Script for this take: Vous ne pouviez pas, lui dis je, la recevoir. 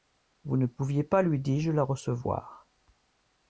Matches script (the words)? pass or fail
pass